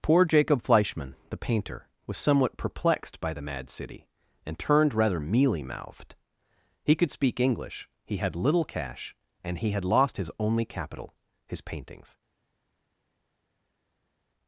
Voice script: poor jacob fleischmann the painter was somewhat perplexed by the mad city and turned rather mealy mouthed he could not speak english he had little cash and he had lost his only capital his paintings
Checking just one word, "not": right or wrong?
wrong